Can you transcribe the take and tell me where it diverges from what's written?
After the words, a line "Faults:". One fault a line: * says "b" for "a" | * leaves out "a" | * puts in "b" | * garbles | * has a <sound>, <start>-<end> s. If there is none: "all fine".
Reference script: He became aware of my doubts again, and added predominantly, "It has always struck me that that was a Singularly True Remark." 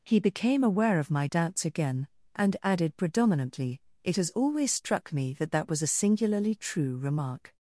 He became aware of my doubts again, and added predominantly, "It has always struck me that that was a Singularly True Remark."
Faults:
all fine